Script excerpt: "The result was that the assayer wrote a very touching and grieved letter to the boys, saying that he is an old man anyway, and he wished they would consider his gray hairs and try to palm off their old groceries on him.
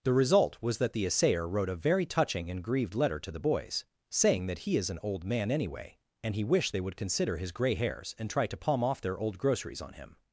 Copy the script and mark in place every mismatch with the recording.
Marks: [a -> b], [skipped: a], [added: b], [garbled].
"The result was that the assayer wrote a very touching and grieved letter to the boys, saying that he is an old man anyway, and he wished they would consider his gray hairs and try to palm off their old groceries on him.